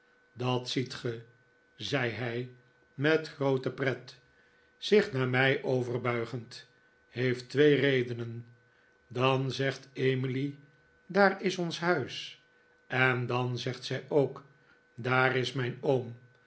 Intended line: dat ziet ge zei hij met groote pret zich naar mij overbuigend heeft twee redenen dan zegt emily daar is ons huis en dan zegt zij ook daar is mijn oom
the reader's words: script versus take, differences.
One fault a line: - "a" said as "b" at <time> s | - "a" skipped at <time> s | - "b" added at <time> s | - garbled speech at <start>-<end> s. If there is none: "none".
none